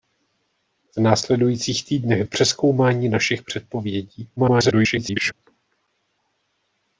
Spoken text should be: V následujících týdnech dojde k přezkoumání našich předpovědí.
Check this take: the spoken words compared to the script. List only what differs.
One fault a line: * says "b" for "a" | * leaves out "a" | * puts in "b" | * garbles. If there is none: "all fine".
* leaves out "dojde"
* garbles